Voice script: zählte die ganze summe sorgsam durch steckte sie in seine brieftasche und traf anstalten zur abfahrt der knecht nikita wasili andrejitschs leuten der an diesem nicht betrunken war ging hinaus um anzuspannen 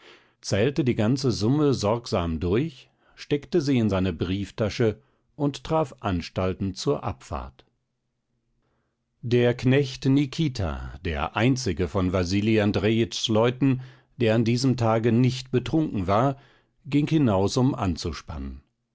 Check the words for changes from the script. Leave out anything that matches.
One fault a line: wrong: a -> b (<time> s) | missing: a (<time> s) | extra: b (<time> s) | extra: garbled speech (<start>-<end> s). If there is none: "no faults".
extra: der einzige von (11.0 s)
extra: tage (14.8 s)